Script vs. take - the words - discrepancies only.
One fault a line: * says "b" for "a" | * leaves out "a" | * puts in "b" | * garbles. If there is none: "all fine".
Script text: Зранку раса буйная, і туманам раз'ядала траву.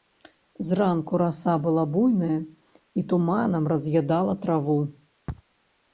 * puts in "была"